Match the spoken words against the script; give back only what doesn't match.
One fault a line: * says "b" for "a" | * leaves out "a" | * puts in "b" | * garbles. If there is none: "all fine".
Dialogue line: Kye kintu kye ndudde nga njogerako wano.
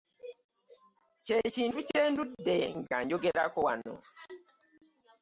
all fine